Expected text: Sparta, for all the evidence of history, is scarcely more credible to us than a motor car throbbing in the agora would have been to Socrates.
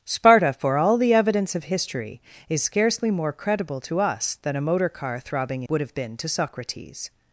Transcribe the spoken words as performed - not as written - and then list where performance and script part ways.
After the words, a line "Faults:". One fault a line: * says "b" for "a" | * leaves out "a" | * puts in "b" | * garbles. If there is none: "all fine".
Sparta, for all the evidence of history, is scarcely more credible to us than a motor car throbbing would have been to Socrates.
Faults:
* leaves out "in the agora"